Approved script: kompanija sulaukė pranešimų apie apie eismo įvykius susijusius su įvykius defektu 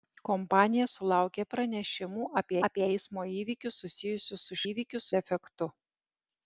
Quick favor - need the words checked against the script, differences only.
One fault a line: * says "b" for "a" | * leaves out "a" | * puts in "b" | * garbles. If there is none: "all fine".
all fine